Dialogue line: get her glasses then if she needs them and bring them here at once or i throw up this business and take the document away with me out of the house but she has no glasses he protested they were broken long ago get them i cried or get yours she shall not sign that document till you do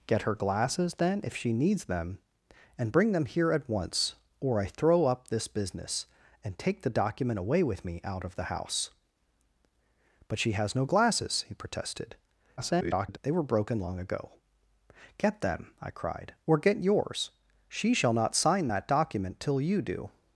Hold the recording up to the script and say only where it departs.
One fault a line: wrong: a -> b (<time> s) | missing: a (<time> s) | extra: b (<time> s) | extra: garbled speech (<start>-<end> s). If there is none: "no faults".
extra: garbled speech (12.6-13.2 s)